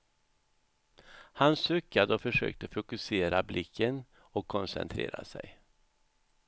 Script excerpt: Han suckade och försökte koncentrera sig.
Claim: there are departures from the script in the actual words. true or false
true